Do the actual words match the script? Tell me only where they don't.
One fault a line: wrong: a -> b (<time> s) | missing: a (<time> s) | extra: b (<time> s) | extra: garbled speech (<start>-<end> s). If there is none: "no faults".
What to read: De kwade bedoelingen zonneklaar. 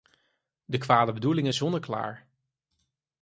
no faults